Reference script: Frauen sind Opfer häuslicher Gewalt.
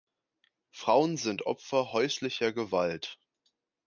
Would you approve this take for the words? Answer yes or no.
yes